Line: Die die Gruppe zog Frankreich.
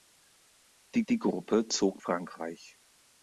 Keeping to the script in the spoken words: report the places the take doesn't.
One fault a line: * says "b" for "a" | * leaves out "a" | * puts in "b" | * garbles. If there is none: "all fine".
all fine